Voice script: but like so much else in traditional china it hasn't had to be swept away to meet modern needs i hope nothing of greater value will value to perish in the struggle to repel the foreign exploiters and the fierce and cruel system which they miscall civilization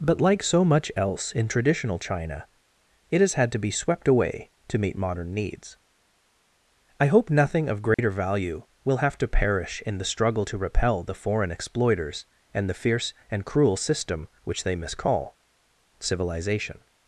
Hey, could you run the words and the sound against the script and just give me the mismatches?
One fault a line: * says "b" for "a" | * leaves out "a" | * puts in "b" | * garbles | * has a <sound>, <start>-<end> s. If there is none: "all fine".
* says "has" for "hasn't"
* has a dropout, 7.9-8.0 s
* says "have" for "value"